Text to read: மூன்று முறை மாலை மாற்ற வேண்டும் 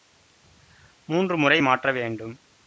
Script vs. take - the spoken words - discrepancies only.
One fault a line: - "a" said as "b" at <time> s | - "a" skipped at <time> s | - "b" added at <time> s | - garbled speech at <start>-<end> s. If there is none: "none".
- "மாலை" skipped at 1.6 s